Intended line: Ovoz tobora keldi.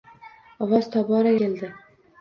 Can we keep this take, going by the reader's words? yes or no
yes